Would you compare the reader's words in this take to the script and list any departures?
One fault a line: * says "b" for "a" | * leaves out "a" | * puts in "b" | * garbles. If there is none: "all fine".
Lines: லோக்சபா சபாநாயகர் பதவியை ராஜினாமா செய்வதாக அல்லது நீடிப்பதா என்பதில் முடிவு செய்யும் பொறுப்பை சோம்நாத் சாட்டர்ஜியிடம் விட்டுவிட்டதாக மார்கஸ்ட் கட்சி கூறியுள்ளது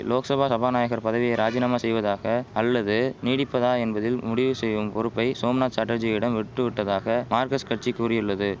all fine